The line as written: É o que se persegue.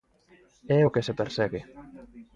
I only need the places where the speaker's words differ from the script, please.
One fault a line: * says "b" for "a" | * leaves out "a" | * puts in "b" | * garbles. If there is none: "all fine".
all fine